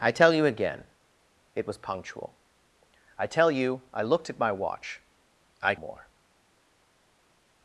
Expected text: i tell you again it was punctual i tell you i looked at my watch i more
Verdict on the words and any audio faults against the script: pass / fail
pass